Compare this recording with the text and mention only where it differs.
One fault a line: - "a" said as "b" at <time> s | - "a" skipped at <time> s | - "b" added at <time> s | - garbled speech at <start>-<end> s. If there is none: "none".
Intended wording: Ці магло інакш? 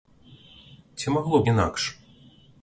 none